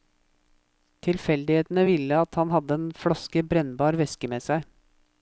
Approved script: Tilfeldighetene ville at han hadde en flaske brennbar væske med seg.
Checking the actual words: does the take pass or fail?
pass